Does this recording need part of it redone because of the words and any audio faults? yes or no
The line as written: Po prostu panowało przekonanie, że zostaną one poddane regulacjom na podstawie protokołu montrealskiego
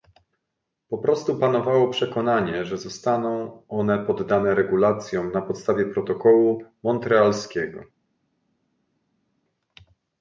no